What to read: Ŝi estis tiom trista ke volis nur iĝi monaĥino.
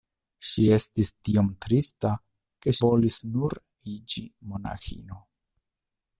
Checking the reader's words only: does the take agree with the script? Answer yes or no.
yes